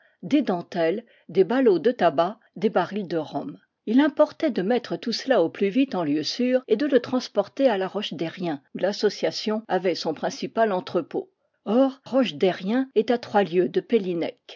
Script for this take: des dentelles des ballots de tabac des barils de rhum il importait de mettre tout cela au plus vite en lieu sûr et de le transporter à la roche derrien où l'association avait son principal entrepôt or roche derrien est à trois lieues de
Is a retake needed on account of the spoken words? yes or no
no